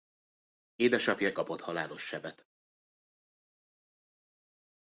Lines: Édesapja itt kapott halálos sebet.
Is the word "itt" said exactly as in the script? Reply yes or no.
no